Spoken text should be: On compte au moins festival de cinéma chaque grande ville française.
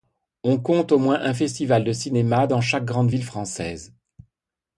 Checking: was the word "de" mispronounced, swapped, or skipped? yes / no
no